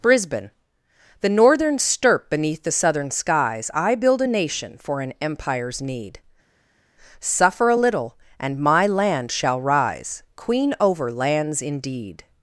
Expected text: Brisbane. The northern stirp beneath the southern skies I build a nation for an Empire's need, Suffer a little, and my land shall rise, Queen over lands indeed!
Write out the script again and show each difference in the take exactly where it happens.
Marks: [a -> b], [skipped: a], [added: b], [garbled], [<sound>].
Brisbane. The northern stirp beneath the southern skies I build a nation for an Empire's need, Suffer a little, and my land shall rise, Queen over lands indeed!